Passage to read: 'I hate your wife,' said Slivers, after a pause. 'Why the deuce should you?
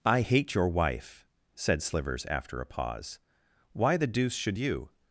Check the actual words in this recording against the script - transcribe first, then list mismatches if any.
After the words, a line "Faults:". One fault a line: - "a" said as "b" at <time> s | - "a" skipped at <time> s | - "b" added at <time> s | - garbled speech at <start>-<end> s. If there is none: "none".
'I hate your wife,' said Slivers, after a pause. 'Why the deuce should you?
Faults:
none